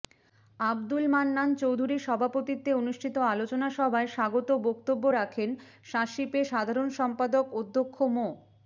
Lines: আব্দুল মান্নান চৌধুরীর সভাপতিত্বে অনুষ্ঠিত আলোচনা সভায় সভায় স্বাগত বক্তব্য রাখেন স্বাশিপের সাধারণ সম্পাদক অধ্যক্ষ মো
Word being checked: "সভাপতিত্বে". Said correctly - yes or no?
yes